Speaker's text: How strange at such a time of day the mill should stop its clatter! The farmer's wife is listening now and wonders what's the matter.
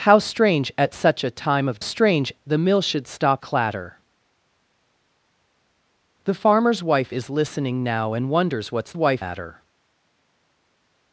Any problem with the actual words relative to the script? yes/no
yes